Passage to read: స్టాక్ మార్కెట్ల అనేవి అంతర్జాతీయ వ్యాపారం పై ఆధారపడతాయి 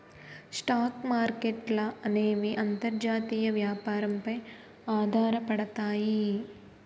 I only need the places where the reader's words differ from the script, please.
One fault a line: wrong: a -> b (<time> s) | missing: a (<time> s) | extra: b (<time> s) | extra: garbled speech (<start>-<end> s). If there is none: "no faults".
no faults